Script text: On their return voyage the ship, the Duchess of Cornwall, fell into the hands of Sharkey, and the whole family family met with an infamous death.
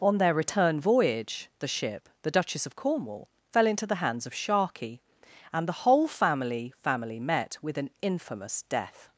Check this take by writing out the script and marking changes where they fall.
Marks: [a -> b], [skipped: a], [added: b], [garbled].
On their return voyage the ship, the Duchess of Cornwall, fell into the hands of Sharkey, and the whole family family met with an infamous death.